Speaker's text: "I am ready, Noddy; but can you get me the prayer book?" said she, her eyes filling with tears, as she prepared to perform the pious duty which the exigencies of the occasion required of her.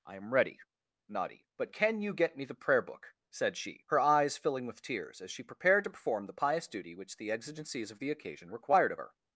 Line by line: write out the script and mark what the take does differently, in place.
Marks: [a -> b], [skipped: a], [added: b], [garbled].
"I am ready, Noddy; but can you get me the prayer book?" said she, her eyes filling with tears, as she prepared to perform the pious duty which the exigencies of the occasion required of her.